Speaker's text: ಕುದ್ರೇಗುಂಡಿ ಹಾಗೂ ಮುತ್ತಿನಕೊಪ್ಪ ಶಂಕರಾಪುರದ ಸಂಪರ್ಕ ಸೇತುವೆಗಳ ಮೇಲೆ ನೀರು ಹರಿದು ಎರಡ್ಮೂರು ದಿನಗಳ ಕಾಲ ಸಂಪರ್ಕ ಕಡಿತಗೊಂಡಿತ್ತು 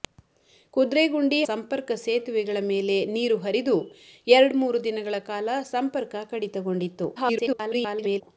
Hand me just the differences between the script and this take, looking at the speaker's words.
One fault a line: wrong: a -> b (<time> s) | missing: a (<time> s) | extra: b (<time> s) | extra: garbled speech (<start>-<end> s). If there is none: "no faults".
missing: ಹಾಗೂ ಮುತ್ತಿನಕೊಪ್ಪ ಶಂಕರಾಪುರದ (1.4 s)
extra: garbled speech (7.2-8.2 s)